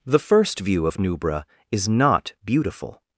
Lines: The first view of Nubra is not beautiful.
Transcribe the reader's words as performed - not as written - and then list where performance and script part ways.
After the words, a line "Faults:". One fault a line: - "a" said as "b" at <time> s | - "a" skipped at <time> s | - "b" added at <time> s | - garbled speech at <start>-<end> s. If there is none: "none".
The first view of Nubra is not beautiful.
Faults:
none